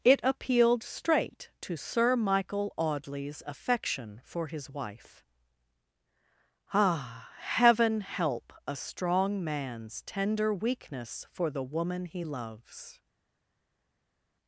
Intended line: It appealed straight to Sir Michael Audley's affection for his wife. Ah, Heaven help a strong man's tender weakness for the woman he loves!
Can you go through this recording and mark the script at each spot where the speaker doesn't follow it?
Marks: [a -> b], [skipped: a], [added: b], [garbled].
It appealed straight to Sir Michael Audley's affection for his wife. Ah, Heaven help a strong man's tender weakness for the woman he loves!